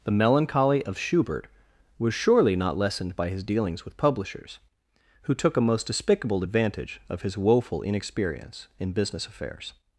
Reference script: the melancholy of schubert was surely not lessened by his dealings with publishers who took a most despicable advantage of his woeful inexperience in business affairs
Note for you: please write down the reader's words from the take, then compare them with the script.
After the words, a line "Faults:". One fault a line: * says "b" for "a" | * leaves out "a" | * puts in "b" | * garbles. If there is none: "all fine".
the melancholy of schubert was surely not lessened by his dealings with publishers who took a most despicable advantage of his woeful inexperience in business affairs
Faults:
all fine